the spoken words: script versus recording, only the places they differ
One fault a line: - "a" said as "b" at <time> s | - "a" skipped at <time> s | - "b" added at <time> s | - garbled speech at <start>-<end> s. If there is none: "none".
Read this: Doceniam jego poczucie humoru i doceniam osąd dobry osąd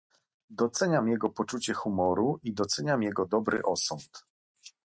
- "osąd" said as "jego" at 3.0 s